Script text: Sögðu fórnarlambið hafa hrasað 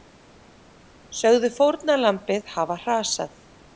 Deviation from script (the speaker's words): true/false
false